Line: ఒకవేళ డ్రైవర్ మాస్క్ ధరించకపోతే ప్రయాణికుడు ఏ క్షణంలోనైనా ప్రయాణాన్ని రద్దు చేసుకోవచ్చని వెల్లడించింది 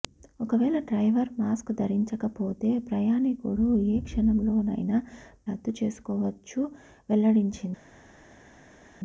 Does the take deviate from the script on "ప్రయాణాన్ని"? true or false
true